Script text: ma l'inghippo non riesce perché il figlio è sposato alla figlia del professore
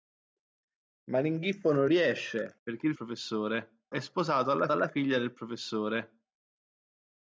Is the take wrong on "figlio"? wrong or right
wrong